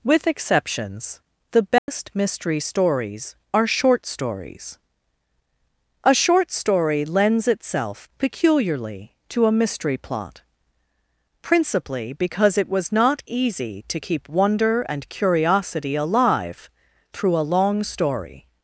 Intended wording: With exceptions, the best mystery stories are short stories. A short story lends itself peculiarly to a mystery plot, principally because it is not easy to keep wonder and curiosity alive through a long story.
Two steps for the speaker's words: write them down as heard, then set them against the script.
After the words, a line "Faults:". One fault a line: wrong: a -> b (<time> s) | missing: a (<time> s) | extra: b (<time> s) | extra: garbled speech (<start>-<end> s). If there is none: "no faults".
With exceptions, the best mystery stories are short stories. A short story lends itself peculiarly to a mystery plot, principally because it was not easy to keep wonder and curiosity alive through a long story.
Faults:
wrong: is -> was (12.7 s)